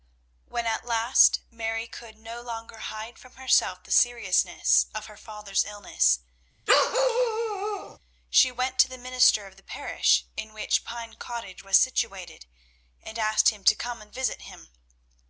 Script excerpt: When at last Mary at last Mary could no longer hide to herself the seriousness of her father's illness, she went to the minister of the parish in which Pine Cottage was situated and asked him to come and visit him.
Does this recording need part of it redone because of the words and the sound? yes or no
yes